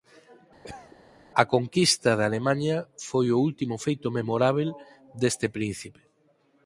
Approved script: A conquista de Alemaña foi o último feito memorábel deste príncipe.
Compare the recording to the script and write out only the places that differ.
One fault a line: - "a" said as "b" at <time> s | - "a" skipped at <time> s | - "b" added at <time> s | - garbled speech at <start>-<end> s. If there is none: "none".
none